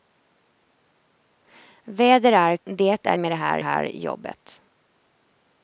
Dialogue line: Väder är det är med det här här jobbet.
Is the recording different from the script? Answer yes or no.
no